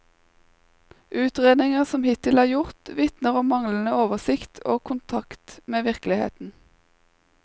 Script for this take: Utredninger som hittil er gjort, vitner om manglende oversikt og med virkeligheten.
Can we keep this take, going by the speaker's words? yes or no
no